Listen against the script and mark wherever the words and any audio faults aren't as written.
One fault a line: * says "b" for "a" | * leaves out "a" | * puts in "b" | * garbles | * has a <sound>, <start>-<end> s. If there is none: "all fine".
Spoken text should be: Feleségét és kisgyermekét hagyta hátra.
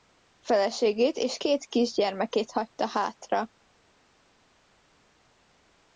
* puts in "két"